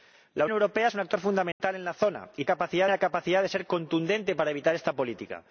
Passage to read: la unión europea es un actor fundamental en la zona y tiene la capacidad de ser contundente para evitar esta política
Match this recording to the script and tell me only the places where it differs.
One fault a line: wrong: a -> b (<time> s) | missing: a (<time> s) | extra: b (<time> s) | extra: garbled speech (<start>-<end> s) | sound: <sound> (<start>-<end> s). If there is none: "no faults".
missing: unión (0.5 s)
sound: dropout (1.5-1.6 s)
wrong: tiene -> capacidad (2.4 s)